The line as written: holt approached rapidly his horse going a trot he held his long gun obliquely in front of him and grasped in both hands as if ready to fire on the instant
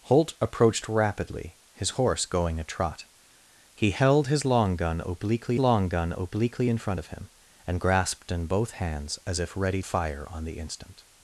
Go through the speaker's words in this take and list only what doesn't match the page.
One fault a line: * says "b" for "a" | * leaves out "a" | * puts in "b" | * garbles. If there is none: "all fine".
* puts in "long gun obliquely"
* leaves out "to"